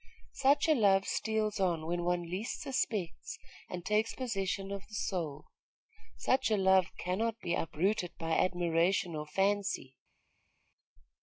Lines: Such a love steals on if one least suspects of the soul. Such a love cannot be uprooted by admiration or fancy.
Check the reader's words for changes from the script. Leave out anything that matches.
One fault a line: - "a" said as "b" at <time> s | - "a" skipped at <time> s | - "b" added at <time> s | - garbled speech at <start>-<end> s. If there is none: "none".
- "if" said as "when" at 1.9 s
- "and takes possession" added at 3.7 s